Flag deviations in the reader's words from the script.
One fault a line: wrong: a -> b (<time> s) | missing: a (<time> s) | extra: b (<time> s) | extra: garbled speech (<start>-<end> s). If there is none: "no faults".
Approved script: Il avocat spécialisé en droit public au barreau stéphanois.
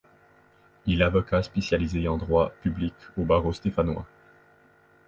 no faults